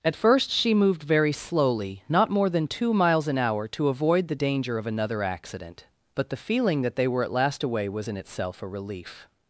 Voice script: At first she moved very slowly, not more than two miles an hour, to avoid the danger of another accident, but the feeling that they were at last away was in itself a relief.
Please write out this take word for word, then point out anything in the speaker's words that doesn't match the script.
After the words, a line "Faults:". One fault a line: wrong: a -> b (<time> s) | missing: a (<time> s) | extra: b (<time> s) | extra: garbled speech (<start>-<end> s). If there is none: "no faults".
At first she moved very slowly, not more than two miles an hour, to avoid the danger of another accident, but the feeling that they were at last away was in itself a relief.
Faults:
no faults